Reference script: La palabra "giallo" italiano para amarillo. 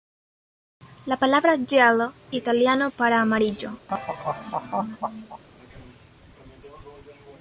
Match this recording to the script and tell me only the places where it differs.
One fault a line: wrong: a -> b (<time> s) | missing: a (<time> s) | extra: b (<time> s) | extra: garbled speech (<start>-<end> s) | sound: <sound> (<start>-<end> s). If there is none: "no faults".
sound: laugh (3.9-5.4 s)